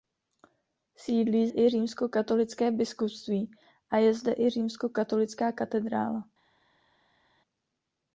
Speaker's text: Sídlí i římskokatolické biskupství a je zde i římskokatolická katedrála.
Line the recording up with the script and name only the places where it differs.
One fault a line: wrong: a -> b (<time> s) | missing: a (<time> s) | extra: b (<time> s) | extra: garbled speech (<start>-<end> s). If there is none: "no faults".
no faults